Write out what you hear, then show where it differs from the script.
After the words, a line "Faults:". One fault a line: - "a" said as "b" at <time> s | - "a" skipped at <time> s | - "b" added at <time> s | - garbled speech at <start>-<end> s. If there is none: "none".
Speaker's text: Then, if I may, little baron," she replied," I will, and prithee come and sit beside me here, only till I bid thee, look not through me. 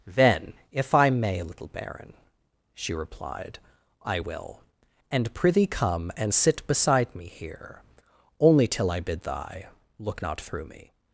Then, if I may, little baron," she replied," I will, and prithee come and sit beside me here, only till I bid thy, look not through me.
Faults:
- "thee" said as "thy" at 9.2 s